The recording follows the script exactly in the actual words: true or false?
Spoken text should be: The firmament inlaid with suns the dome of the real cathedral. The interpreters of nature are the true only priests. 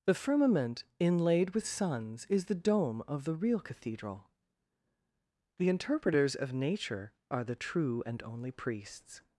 false